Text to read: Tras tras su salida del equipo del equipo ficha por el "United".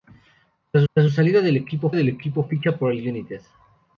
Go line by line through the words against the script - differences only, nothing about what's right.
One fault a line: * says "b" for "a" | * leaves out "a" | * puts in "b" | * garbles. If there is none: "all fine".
all fine